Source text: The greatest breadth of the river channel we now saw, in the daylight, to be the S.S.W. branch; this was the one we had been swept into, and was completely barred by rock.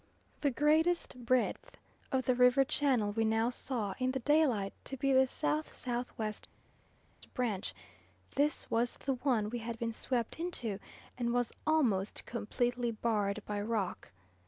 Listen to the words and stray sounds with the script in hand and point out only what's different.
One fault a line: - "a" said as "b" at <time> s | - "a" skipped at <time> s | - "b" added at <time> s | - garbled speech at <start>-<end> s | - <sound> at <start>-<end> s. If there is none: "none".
- "almost" added at 11.7 s